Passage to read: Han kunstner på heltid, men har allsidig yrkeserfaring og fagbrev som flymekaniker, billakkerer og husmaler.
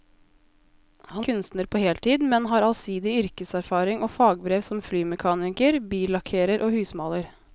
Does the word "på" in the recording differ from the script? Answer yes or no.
no